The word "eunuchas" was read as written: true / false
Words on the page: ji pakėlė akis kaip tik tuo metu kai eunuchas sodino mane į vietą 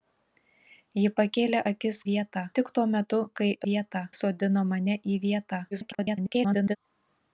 false